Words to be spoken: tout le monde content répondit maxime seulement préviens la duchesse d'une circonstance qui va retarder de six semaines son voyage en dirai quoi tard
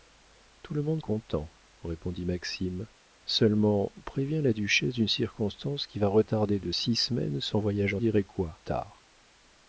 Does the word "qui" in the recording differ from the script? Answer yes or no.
no